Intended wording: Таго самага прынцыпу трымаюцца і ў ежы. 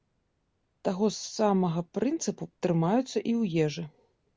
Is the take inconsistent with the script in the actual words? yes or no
no